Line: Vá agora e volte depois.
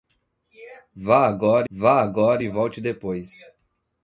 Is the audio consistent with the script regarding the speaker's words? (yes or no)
no